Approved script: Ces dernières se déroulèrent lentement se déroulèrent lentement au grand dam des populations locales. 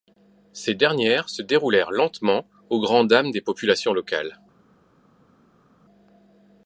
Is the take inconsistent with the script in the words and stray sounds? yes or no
yes